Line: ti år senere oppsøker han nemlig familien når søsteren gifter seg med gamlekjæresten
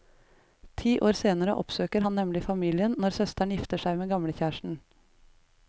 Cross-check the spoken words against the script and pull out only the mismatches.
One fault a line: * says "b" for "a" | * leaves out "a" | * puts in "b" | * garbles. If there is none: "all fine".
all fine